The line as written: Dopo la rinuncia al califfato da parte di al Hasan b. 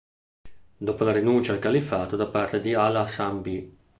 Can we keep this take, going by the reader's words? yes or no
yes